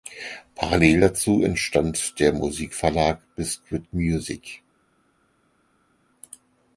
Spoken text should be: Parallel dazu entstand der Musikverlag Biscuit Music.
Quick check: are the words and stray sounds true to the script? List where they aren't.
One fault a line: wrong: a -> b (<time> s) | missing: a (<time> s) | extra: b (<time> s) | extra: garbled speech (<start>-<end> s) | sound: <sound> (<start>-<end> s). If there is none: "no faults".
no faults